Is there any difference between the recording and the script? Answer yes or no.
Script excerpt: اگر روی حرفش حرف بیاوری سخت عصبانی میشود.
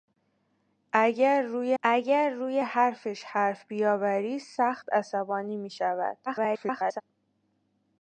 yes